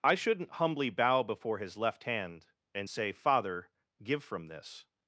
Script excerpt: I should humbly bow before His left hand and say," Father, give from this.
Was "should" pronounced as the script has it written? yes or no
no